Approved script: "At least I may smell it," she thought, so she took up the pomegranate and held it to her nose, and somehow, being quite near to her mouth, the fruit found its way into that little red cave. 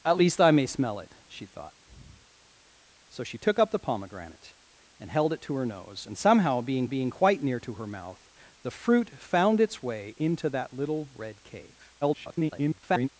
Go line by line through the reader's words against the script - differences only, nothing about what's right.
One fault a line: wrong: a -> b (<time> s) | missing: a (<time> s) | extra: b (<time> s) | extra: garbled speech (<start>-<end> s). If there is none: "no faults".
extra: being (6.8 s)
extra: garbled speech (12.0-13.1 s)